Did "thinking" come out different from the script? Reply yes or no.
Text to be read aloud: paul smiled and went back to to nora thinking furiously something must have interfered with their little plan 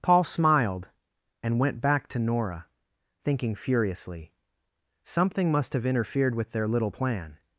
no